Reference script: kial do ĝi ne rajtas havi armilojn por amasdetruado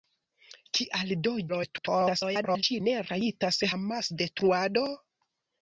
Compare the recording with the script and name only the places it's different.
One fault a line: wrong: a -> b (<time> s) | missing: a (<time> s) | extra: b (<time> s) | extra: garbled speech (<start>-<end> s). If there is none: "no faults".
extra: garbled speech (1.5-2.6 s)
missing: havi armilojn por (3.6 s)